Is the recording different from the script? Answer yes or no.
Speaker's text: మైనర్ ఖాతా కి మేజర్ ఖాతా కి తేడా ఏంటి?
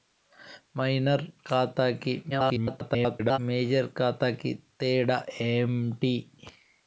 yes